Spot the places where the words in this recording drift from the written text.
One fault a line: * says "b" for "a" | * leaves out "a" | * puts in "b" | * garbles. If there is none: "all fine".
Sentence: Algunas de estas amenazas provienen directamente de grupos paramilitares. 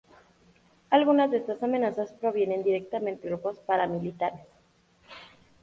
* leaves out "de"